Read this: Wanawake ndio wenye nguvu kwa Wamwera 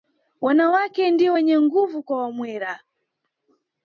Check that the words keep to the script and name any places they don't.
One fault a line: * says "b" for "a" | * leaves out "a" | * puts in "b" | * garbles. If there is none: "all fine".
all fine